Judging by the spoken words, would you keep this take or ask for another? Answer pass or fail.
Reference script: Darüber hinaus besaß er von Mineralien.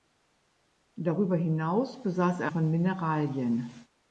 pass